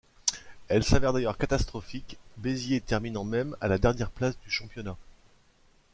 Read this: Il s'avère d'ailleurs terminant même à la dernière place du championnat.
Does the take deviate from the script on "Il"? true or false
true